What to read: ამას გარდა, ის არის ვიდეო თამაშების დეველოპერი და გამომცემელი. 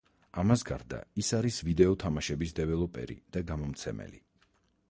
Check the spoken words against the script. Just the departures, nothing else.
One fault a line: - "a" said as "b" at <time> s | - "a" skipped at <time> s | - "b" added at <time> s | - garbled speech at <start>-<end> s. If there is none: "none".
none